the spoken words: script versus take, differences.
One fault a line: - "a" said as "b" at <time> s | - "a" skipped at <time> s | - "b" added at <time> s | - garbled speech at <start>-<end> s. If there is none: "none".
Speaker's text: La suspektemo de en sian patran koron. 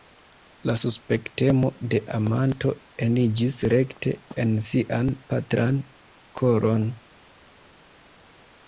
- "amanto eniĝis rekte" added at 2.2 s